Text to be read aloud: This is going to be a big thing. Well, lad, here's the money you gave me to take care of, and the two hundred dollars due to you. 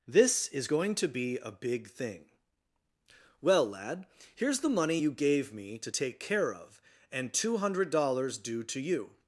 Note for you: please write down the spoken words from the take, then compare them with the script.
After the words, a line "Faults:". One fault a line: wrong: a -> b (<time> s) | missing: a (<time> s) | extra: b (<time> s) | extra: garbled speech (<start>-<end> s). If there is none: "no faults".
This is going to be a big thing. Well, lad, here's the money you gave me to take care of, and two hundred dollars due to you.
Faults:
missing: the (7.3 s)